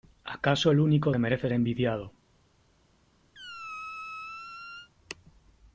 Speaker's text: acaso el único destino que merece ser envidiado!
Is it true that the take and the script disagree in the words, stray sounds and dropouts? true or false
true